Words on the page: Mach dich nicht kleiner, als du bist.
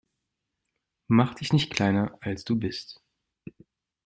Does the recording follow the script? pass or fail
pass